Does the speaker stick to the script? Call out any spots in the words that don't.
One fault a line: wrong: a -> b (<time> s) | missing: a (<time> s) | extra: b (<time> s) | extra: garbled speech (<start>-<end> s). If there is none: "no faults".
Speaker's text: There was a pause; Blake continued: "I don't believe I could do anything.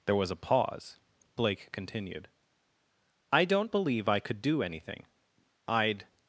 extra: I'd (5.7 s)